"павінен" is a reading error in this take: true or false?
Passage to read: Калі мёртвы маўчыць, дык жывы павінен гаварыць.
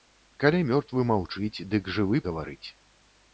true